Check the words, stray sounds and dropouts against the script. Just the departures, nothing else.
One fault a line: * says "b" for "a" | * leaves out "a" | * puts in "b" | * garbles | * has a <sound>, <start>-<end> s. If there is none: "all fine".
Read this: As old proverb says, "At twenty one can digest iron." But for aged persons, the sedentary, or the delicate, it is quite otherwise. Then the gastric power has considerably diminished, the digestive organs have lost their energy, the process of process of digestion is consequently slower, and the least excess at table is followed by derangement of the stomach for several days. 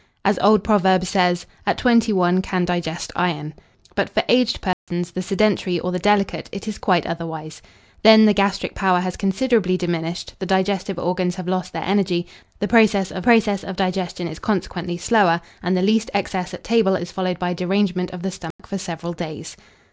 * has a dropout, 4.7-4.9 s
* has a dropout, 18.5-18.6 s